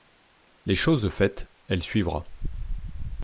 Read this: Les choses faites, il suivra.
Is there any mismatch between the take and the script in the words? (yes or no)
yes